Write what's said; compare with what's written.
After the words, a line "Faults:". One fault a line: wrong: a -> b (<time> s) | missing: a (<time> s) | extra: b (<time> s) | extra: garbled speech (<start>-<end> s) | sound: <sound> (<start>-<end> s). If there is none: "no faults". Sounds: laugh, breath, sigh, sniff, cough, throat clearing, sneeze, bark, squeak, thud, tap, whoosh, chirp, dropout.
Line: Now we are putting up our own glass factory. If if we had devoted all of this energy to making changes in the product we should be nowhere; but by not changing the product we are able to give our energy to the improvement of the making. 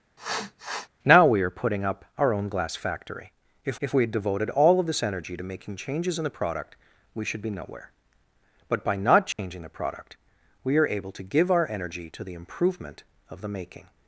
Now we are putting up our own glass factory. If if we had devoted all of this energy to making changes in the product we should be nowhere; but by not changing the product we are able to give our energy to the improvement of the making.
Faults:
sound: sniff (0.2-0.9 s)
sound: dropout (9.3-9.4 s)